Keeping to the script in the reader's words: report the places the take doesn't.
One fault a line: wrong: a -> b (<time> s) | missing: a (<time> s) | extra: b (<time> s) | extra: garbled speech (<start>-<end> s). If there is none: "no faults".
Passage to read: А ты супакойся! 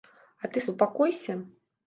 no faults